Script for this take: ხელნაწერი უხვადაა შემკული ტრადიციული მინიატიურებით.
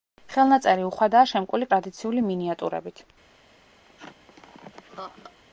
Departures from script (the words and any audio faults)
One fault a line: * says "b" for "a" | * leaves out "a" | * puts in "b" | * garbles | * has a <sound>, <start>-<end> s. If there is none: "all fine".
* has a laugh, 3.8-5.4 s